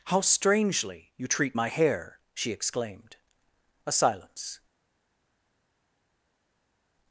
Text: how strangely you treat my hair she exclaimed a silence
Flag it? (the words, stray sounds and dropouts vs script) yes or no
no